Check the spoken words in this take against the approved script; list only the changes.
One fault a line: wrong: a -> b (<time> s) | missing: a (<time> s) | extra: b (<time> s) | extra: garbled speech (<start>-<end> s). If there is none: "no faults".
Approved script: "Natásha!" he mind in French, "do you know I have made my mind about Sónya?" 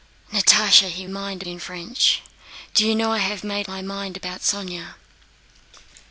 no faults